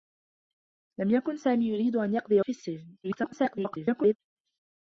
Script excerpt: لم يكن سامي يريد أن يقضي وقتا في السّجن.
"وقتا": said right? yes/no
no